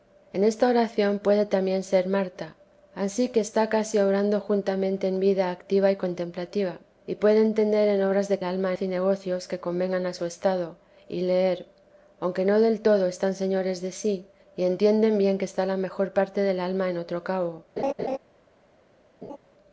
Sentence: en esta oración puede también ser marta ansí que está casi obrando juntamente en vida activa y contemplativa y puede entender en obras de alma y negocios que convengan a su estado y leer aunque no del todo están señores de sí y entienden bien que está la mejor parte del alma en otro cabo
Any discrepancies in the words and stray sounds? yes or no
yes